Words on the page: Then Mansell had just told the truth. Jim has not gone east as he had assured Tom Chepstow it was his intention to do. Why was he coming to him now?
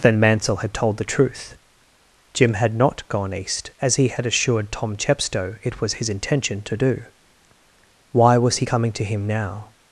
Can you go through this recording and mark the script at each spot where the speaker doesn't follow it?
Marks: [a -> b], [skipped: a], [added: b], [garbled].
Then Mansell had [skipped: just] told the truth. Jim [has -> had] not gone east as he had assured Tom Chepstow it was his intention to do. Why was he coming to him now?